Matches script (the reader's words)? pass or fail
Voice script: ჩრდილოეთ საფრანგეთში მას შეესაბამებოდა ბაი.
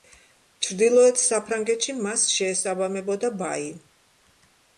pass